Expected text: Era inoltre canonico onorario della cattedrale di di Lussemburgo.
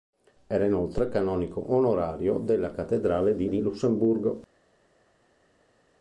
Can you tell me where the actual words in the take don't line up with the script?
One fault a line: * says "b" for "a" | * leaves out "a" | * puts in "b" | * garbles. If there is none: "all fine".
all fine